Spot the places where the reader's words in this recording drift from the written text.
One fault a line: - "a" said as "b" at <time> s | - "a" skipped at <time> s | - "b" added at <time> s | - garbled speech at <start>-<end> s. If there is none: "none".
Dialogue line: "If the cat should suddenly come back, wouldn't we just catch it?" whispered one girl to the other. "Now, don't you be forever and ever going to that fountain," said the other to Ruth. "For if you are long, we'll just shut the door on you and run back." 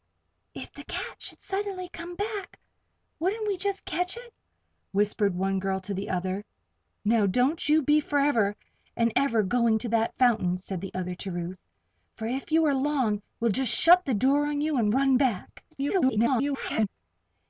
- garbled speech at 15.7-16.9 s